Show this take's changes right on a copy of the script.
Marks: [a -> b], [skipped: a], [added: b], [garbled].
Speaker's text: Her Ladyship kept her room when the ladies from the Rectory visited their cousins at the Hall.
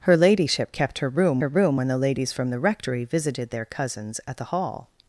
Her Ladyship kept her room [added: her room] when the ladies from the Rectory visited their cousins at the Hall.